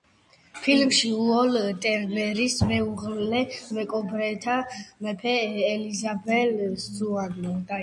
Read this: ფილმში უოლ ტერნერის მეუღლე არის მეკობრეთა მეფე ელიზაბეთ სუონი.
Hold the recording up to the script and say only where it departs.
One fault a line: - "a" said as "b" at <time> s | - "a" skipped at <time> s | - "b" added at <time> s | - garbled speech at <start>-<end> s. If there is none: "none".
- "არის" skipped at 3.4 s